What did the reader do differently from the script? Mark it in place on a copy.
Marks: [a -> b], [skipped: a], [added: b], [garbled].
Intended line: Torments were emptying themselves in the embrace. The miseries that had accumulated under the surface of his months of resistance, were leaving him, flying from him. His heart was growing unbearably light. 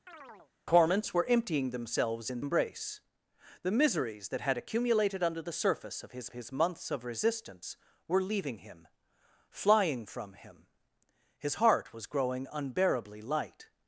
Torments were emptying themselves in [skipped: the] embrace. The miseries that had accumulated under the surface of his [added: his] months of resistance, were leaving him, flying from him. His heart was growing unbearably light.